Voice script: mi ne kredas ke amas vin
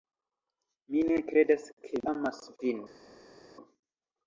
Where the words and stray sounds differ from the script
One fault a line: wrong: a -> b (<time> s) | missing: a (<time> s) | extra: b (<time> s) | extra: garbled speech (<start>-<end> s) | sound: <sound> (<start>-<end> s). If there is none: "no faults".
no faults